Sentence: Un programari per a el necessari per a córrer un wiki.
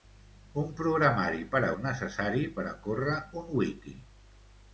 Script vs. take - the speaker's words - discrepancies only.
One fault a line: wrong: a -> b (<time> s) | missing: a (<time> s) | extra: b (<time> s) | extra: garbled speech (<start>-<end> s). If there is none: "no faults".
no faults